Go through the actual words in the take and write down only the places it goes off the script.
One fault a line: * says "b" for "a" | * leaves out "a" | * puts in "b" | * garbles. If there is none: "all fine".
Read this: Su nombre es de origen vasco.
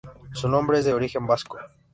all fine